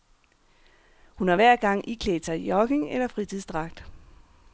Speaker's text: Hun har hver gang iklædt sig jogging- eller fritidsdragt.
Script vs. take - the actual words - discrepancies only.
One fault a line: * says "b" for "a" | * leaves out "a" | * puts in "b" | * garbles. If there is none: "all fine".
all fine